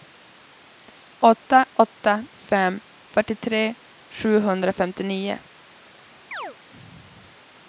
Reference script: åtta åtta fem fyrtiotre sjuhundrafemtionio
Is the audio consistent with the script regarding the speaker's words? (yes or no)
yes